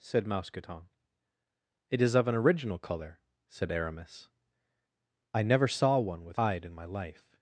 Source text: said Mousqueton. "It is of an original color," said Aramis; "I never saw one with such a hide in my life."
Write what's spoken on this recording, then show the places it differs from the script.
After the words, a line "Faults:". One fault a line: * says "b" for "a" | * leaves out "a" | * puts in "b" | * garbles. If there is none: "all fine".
said Mousqueton. "It is of an original color," said Aramis; "I never saw one with hide in my life."
Faults:
* leaves out "such a"